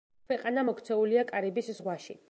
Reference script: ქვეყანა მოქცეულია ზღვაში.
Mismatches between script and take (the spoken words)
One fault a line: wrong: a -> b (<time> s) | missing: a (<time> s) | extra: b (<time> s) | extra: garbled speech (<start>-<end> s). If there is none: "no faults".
extra: კარიბის (1.3 s)